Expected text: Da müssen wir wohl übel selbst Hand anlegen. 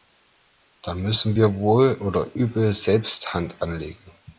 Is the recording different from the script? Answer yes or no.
yes